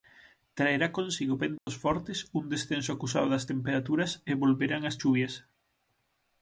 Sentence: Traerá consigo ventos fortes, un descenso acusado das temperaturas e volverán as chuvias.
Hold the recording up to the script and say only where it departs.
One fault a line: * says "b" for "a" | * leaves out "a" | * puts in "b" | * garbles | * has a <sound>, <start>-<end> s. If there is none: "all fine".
* has a dropout, 1.6-1.7 s